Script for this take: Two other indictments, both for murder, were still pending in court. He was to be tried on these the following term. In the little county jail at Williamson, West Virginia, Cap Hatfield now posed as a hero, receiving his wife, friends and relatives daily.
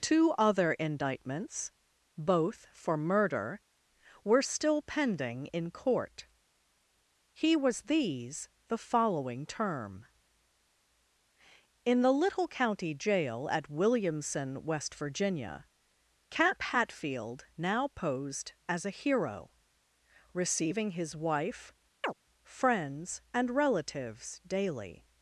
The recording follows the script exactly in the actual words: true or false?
false